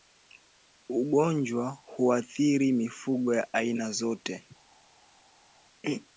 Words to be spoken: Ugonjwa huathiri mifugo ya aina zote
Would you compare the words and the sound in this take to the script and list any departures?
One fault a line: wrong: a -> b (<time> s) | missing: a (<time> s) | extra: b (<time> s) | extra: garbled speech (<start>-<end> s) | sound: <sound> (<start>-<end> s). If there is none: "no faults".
no faults